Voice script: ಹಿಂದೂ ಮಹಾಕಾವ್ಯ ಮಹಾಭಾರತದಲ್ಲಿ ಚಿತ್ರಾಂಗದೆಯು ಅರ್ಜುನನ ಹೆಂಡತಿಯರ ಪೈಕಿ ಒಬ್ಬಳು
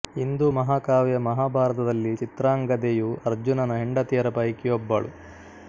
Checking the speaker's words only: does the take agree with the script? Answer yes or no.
yes